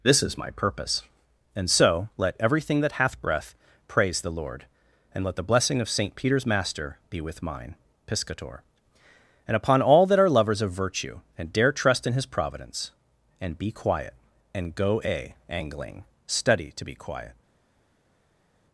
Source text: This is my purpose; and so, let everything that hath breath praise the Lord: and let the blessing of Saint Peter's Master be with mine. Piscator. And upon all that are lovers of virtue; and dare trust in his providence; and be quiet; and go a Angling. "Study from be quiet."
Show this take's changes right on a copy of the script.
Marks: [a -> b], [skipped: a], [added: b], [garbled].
This is my purpose; and so, let everything that hath breath praise the Lord: and let the blessing of Saint Peter's Master be with mine. Piscator. And upon all that are lovers of virtue; and dare trust in his providence; and be quiet; and go a Angling. "Study [from -> to] be quiet."